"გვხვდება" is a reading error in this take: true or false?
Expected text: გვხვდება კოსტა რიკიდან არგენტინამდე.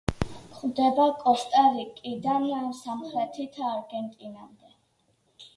false